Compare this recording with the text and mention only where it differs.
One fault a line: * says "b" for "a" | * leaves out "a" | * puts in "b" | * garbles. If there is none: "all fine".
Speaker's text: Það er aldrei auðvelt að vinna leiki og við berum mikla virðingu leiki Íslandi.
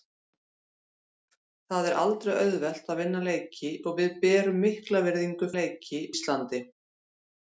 all fine